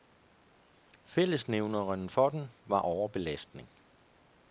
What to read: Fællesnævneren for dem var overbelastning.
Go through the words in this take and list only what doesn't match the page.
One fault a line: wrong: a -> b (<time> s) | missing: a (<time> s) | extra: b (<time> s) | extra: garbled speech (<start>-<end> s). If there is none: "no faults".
no faults